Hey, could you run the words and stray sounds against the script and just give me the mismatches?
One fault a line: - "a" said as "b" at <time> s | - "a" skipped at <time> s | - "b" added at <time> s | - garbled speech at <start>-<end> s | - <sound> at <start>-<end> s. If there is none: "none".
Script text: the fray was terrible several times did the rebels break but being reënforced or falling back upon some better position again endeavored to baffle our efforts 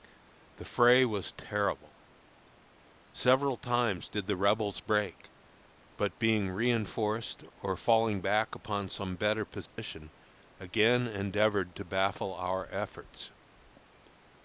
- dropout at 9.7-9.8 s